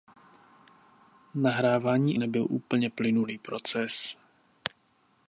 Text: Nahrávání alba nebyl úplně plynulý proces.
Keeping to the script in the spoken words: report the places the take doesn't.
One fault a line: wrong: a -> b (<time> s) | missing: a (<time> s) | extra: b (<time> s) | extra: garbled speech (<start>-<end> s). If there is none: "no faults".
missing: alba (2.2 s)